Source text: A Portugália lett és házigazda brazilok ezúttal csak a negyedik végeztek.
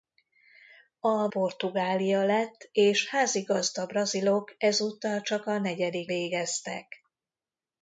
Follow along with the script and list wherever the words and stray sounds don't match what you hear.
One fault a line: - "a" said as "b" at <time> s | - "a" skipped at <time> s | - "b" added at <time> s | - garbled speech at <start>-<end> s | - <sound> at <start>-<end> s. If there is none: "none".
none